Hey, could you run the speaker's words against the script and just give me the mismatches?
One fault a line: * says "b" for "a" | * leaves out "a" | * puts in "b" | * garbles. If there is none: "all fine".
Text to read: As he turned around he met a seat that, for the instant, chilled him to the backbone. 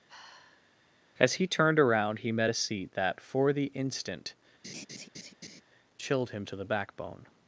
all fine